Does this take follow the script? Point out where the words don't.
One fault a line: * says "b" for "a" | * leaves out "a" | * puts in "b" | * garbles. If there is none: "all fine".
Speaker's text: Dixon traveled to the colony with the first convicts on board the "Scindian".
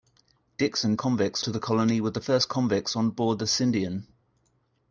* says "convicts" for "traveled"